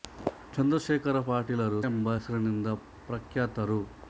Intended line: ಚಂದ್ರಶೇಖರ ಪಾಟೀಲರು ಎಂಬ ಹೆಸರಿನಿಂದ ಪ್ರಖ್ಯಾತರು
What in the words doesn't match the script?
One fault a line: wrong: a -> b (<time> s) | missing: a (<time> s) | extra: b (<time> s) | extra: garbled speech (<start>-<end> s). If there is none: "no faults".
no faults